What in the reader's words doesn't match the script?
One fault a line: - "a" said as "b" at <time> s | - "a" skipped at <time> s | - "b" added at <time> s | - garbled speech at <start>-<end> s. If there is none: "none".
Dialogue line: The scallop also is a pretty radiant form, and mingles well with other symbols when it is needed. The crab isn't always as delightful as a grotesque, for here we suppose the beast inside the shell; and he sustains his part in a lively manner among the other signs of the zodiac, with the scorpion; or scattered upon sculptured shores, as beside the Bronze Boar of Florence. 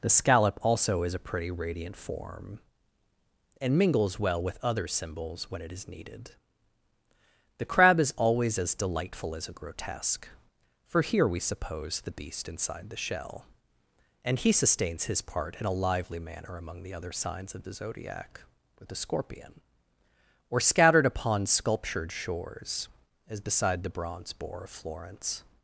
- "isn't" said as "is" at 8.0 s